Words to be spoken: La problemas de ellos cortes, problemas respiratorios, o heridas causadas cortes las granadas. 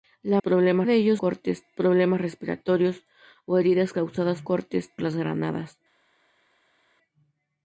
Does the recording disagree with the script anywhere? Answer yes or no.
no